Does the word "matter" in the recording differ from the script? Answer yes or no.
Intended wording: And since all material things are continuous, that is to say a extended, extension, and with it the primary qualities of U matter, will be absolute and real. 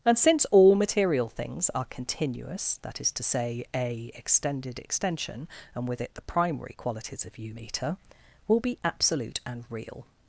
yes